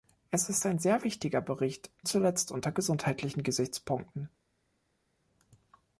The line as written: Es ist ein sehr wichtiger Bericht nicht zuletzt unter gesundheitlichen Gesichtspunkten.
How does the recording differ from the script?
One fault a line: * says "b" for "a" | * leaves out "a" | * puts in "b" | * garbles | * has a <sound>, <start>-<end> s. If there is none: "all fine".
* leaves out "nicht"